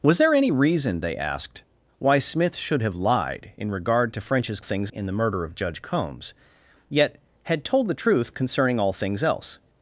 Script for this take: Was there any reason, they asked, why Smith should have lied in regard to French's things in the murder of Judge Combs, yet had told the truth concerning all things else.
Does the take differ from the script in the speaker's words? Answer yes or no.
no